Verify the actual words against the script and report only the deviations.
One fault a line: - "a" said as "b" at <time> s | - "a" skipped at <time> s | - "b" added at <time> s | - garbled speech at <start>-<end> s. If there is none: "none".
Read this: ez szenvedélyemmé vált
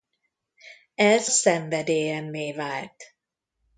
none